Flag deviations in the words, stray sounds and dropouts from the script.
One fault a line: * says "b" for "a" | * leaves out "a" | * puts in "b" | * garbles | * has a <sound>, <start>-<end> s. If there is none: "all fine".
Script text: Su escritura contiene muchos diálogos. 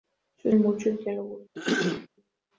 * leaves out "escritura contiene"
* has a throat clearing, 1.5-2.1 s